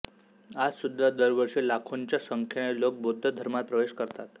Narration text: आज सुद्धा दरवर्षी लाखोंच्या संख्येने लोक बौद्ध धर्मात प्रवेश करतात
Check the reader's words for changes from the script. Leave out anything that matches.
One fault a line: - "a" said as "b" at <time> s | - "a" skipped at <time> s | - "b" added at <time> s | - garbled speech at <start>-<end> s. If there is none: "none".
none